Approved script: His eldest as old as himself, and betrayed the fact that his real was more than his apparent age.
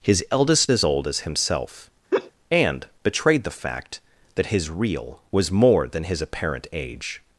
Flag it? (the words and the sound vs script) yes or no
yes